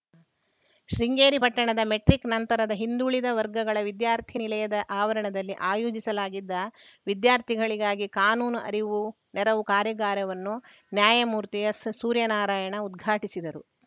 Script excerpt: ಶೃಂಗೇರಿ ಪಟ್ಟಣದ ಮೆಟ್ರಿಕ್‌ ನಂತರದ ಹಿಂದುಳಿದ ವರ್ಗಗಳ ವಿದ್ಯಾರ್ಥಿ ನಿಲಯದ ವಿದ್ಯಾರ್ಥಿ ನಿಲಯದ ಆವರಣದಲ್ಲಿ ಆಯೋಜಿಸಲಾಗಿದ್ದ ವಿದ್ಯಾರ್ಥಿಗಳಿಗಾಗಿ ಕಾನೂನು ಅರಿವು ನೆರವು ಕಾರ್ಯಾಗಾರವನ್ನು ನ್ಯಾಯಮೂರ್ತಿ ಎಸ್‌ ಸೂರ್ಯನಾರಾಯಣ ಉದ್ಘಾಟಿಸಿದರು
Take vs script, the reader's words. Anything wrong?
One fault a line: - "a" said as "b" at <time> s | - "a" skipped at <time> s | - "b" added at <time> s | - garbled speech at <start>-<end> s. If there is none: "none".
- "ವಿದ್ಯಾರ್ಥಿ ನಿಲಯದ" skipped at 4.8 s